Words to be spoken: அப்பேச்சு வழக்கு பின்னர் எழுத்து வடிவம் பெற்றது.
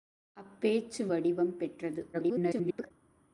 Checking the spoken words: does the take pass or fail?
fail